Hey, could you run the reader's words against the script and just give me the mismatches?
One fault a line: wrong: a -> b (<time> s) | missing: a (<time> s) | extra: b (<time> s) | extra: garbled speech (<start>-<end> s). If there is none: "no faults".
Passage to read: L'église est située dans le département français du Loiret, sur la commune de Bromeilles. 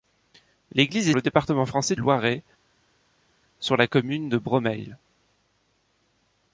missing: située dans (1.1 s)
missing: du (2.0 s)